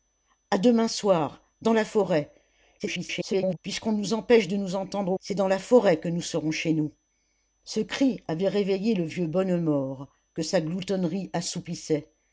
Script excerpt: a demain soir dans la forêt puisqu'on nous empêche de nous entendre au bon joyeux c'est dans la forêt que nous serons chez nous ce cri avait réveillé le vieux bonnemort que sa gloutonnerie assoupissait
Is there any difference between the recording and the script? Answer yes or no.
yes